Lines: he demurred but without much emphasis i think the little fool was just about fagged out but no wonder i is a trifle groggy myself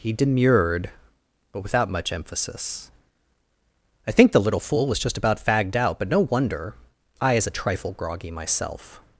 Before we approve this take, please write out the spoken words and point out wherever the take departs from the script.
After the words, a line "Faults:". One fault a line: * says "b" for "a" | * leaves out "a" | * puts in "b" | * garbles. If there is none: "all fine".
he demurred but without much emphasis i think the little fool was just about fagged out but no wonder i is a trifle groggy myself
Faults:
all fine